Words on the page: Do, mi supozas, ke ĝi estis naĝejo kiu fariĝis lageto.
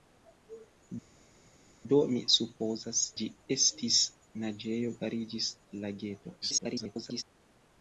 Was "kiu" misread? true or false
true